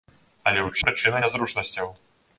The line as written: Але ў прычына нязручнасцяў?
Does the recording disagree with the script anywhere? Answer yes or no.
no